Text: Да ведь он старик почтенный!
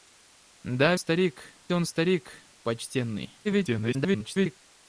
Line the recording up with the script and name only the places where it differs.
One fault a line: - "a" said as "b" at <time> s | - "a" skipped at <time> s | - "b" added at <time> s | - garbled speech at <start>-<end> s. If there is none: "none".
- "ведь" said as "старик" at 0.9 s
- garbled speech at 3.4-4.6 s